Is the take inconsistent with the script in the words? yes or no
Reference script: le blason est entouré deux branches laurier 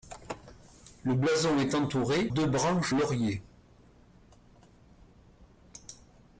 no